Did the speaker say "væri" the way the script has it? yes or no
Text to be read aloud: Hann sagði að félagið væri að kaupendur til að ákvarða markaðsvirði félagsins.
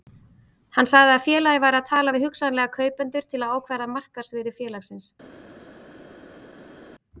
yes